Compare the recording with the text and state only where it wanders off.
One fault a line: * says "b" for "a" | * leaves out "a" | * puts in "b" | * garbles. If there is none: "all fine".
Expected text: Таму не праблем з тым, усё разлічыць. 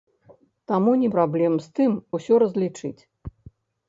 all fine